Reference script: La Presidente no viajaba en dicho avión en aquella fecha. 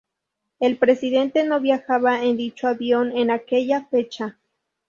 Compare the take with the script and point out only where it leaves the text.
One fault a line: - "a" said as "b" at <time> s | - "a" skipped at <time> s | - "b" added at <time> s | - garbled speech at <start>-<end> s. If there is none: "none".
- "La" said as "El" at 0.6 s